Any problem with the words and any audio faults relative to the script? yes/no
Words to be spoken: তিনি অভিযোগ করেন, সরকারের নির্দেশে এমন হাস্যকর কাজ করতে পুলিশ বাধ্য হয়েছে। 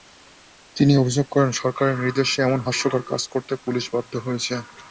no